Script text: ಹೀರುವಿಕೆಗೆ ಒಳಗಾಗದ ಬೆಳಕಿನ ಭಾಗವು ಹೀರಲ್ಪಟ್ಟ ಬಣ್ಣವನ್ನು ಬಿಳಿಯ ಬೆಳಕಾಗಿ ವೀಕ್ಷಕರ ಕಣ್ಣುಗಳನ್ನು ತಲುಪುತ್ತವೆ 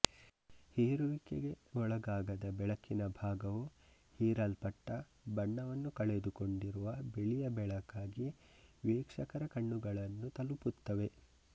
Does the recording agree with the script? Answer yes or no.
no